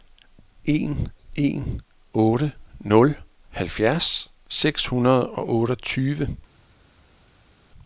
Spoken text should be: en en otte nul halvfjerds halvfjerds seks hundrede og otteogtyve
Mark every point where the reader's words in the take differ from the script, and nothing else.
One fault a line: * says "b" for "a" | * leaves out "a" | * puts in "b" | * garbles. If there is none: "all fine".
* leaves out "halvfjerds"